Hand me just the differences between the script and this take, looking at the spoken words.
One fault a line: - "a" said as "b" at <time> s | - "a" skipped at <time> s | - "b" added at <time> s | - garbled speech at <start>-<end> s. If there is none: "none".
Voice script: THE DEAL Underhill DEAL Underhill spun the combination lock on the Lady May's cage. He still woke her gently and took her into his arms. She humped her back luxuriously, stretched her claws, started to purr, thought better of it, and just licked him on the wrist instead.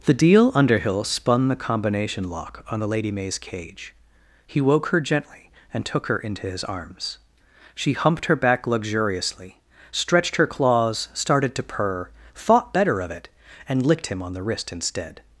- "DEAL Underhill" skipped at 1.0 s
- "still" skipped at 4.6 s
- "just" skipped at 13.8 s